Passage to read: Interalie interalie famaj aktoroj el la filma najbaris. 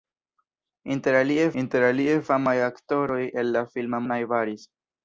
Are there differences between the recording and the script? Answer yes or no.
no